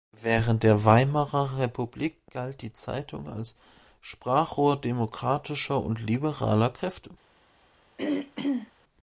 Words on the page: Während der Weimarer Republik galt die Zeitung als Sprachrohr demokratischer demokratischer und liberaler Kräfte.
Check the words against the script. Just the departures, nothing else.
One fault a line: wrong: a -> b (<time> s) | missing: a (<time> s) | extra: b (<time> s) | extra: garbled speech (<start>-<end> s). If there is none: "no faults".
missing: demokratischer (5.8 s)